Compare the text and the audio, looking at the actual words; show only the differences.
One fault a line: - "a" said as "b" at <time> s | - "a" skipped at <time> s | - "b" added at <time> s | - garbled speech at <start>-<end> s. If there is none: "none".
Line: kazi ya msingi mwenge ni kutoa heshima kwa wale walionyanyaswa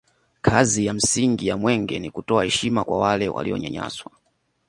- "ya" added at 1.5 s